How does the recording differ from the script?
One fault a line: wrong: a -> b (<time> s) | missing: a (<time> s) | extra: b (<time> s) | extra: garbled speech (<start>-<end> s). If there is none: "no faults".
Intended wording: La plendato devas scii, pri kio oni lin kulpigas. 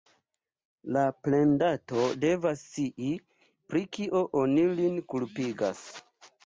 no faults